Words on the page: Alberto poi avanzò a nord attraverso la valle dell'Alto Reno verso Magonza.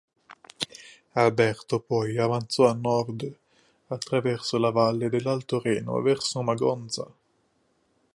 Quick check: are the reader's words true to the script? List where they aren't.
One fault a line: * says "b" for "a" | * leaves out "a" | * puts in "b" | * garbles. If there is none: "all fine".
all fine